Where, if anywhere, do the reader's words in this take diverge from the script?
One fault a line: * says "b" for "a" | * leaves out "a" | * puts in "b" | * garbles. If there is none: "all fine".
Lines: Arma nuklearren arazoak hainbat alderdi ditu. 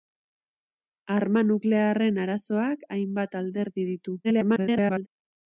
* garbles